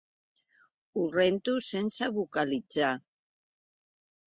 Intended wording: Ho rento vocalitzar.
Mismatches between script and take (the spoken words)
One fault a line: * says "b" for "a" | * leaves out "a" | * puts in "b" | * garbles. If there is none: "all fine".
* puts in "sense"